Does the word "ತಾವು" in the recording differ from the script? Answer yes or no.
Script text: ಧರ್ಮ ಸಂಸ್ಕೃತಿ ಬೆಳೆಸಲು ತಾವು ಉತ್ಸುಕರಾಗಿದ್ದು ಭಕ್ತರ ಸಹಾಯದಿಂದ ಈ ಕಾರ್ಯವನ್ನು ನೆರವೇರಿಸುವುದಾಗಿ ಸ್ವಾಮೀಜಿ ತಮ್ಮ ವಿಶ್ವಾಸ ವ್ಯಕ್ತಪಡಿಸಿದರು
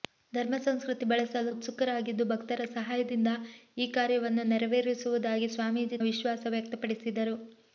yes